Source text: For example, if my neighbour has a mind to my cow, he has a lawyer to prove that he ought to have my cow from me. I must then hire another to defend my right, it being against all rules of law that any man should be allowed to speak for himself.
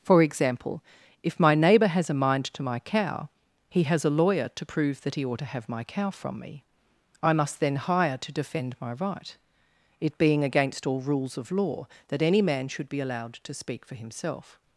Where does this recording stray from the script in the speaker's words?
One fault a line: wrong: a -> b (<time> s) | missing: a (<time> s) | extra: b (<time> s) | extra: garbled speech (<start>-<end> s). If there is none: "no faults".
missing: another (8.2 s)